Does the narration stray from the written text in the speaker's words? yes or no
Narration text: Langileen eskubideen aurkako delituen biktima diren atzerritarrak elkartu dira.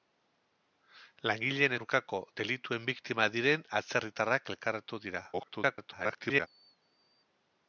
yes